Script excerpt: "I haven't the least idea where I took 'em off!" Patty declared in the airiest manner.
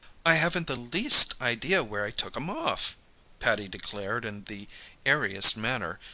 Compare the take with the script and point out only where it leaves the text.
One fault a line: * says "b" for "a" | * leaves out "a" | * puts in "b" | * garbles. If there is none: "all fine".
all fine